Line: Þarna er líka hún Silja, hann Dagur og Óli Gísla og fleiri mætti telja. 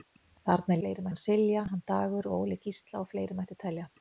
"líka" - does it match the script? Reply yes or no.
no